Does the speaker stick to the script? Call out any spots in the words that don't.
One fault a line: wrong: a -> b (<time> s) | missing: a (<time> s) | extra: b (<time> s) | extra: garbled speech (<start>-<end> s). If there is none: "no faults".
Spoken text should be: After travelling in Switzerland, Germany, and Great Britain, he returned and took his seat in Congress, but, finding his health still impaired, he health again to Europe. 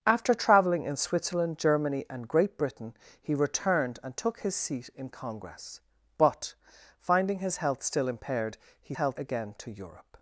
no faults